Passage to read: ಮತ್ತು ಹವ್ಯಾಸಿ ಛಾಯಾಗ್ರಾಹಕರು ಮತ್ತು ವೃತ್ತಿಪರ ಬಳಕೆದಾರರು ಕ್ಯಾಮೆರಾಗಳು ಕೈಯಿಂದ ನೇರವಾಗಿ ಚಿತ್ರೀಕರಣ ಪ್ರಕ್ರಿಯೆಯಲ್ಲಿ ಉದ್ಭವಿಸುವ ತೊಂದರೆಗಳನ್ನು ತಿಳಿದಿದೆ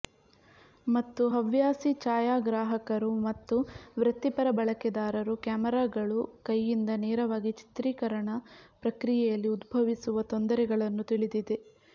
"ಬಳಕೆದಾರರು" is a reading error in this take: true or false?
false